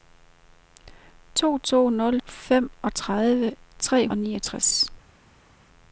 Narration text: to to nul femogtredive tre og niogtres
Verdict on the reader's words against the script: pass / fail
pass